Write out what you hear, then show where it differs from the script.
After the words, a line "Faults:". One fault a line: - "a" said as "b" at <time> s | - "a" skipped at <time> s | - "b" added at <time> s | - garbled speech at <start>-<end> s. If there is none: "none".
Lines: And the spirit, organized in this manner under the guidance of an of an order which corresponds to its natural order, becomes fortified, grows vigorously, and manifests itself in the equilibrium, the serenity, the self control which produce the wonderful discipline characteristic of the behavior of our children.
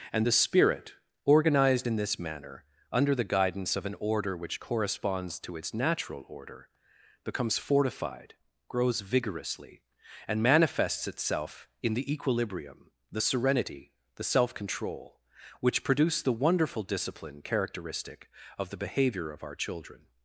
And the spirit, organized in this manner under the guidance of an order which corresponds to its natural order, becomes fortified, grows vigorously, and manifests itself in the equilibrium, the serenity, the self control which produce the wonderful discipline characteristic of the behavior of our children.
Faults:
- "of an" skipped at 4.0 s